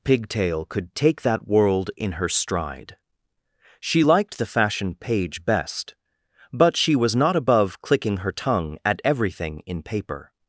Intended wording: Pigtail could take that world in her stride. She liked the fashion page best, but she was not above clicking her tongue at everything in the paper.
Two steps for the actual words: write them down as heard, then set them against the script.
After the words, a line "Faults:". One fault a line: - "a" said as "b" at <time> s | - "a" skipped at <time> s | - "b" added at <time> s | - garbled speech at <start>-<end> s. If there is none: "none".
Pigtail could take that world in her stride. She liked the fashion page best, but she was not above clicking her tongue at everything in paper.
Faults:
- "the" skipped at 9.8 s